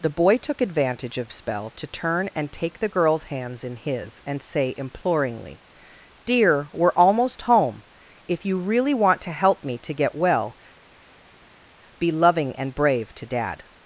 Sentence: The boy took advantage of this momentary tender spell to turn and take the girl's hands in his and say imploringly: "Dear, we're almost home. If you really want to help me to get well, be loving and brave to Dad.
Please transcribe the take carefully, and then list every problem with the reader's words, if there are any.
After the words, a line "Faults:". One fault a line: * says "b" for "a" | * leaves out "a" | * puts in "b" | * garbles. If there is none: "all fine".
The boy took advantage of spell to turn and take the girl's hands in his and say imploringly: "Dear, we're almost home. If you really want to help me to get well, be loving and brave to Dad.
Faults:
* leaves out "this momentary tender"